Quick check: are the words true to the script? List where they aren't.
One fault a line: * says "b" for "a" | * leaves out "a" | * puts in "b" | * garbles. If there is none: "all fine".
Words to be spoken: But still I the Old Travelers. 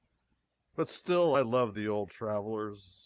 * puts in "love"